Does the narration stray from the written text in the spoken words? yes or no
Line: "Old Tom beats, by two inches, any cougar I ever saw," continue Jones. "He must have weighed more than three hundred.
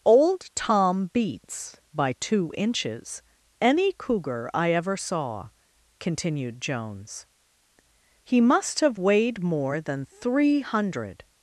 yes